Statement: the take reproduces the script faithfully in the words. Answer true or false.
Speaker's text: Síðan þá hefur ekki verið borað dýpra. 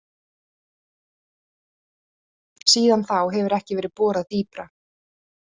true